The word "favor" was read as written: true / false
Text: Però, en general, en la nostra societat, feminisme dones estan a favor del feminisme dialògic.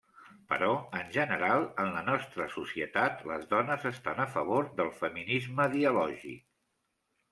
true